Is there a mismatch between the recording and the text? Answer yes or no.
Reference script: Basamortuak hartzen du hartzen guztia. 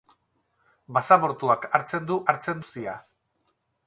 no